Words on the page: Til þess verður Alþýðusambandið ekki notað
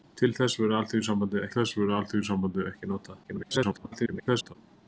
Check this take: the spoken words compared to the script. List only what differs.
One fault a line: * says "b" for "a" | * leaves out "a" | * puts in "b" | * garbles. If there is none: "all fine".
* puts in "þess verður Alþýðusambandið"
* garbles